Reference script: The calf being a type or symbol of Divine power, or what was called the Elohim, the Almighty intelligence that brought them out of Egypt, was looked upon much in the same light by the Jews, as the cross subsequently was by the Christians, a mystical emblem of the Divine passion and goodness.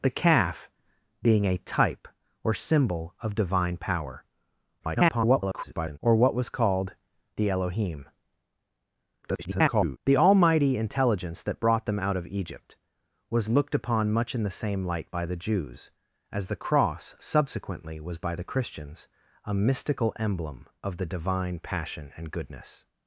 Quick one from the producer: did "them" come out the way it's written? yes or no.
yes